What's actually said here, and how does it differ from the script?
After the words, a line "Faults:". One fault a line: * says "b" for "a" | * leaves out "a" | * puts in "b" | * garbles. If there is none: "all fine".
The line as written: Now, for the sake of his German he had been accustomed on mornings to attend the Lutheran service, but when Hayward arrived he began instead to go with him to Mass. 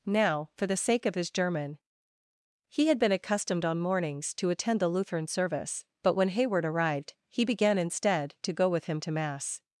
Now, for the sake of his German he had been accustomed on mornings to attend the Lutheran service, but when Hayward arrived he began instead to go with him to Mass.
Faults:
all fine